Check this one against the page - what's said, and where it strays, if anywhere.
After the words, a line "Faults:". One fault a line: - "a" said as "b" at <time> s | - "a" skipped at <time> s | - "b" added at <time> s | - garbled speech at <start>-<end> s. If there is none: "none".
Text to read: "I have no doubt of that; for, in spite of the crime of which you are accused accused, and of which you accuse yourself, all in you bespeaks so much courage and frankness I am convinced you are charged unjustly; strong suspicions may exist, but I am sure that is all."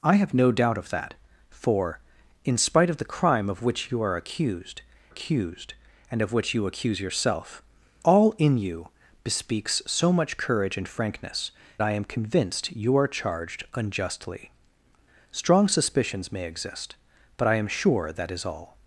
"I have no doubt of that; for, in spite of the crime of which you are accused accused, and of which you accuse yourself, all in you bespeaks so much courage and frankness I am convinced you are charged unjustly; strong suspicions may exist, but I am sure that is all."
Faults:
none